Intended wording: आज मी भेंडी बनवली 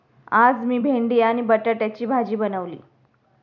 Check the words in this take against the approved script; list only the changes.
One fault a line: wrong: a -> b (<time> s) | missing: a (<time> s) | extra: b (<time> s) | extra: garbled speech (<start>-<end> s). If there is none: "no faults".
extra: आणि बटाट्याची भाजी (1.2 s)